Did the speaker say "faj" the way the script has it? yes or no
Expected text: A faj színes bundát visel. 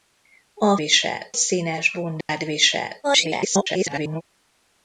no